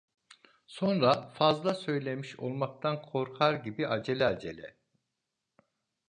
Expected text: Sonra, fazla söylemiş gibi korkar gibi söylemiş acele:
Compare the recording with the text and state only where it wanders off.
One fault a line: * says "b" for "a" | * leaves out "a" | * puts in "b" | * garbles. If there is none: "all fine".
* says "olmaktan" for "gibi"
* says "acele" for "söylemiş"